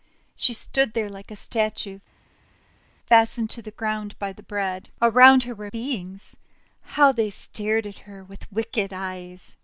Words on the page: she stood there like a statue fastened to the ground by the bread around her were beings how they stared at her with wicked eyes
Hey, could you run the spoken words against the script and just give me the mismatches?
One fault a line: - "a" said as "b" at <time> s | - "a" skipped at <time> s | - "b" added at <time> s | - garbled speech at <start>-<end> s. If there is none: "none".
none